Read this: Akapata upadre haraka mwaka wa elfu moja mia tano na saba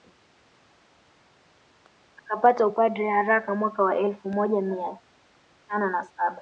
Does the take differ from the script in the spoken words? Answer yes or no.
no